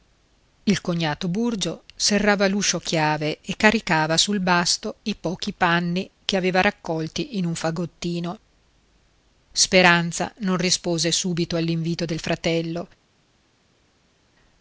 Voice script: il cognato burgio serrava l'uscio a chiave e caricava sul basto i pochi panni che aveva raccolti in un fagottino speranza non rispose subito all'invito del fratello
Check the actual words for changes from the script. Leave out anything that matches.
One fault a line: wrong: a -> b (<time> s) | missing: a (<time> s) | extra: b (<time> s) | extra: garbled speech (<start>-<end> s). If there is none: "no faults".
no faults